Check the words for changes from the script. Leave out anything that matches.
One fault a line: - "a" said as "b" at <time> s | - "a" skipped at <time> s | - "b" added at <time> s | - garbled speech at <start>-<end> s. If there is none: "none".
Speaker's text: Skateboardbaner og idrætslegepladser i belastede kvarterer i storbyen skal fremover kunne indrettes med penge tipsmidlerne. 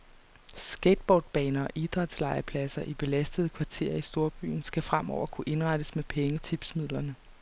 none